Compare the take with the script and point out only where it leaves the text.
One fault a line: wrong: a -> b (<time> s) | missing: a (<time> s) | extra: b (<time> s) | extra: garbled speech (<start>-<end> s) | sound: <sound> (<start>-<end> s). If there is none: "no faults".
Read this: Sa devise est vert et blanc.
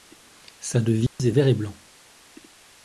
sound: dropout (1.1-1.2 s)